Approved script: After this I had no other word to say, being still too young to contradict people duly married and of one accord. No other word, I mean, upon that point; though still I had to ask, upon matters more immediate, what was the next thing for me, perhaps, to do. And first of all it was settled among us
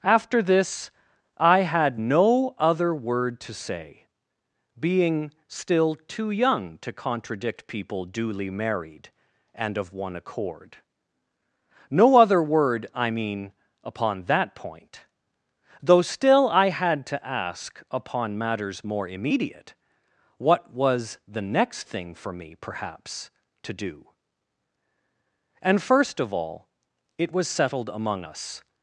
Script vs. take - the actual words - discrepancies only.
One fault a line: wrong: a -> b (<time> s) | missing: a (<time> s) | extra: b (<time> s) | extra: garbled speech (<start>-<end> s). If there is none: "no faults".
no faults